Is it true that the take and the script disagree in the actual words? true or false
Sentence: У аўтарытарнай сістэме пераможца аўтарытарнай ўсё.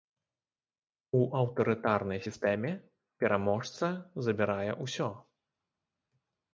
true